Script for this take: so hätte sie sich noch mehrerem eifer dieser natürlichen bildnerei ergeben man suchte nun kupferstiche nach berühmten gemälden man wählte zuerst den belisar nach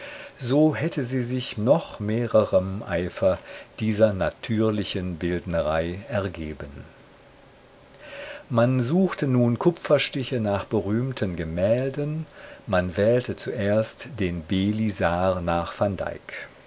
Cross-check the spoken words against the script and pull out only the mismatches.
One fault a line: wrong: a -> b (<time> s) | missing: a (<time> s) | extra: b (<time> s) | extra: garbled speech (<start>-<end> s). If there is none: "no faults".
no faults